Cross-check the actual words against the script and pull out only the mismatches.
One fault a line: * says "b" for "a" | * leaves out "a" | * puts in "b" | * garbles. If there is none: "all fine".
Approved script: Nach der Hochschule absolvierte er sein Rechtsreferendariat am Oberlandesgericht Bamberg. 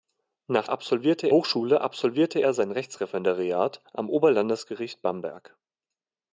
* says "absolvierte" for "der"